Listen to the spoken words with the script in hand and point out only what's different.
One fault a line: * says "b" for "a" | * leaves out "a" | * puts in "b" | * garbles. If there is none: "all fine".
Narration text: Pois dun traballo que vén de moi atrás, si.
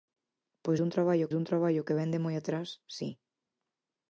* puts in "dun traballo"